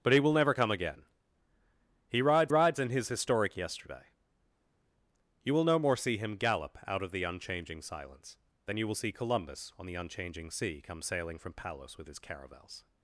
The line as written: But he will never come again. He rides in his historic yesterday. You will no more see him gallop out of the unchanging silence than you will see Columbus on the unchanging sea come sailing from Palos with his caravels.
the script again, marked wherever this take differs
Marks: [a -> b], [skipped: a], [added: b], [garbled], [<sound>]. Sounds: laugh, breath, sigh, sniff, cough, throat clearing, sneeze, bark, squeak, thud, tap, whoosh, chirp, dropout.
But he will never come again. He rides [added: rides] in his historic yesterday. You will no more see him gallop out of the unchanging silence than you will see Columbus on the unchanging sea come sailing from Palos with his caravels.